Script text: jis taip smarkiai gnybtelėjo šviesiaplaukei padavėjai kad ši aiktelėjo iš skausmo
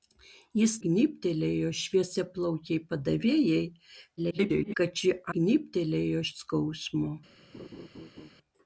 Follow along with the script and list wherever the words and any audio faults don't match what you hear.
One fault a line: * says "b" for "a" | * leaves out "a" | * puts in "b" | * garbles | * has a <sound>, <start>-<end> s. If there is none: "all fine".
* leaves out "taip smarkiai"
* garbles
* says "gnybtelėjo" for "aiktelėjo"
* has a laugh, 7.5-8.3 s